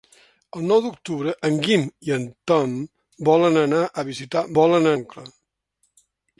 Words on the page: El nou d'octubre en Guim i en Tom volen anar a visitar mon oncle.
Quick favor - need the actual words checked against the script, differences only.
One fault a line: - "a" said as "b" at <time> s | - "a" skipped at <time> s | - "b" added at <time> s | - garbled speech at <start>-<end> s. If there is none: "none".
- "mon" said as "volen" at 4.6 s